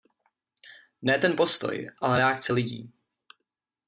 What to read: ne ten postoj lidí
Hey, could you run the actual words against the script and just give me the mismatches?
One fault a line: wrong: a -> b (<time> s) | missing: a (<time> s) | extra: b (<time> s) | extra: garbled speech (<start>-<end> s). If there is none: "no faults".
extra: ale reakce (2.0 s)